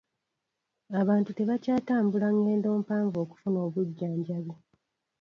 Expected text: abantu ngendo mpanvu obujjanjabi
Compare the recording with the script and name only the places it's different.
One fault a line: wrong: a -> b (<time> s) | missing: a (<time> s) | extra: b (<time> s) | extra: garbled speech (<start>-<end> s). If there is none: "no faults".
extra: tebakyatambula (1.4 s)
extra: okufuna (3.2 s)